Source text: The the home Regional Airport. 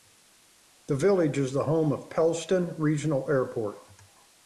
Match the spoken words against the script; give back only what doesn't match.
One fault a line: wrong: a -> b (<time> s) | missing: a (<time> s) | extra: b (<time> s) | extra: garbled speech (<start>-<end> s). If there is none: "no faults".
extra: village is (0.9 s)
extra: of Pellston (1.9 s)